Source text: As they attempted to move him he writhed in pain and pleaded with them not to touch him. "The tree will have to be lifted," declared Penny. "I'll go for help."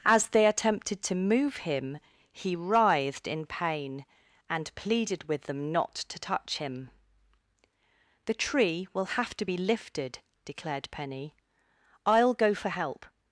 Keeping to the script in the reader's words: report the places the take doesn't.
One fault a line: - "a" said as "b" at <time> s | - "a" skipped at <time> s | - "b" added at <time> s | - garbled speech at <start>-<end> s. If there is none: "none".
none